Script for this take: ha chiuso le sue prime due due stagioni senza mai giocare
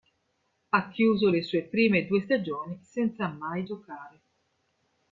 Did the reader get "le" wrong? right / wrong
right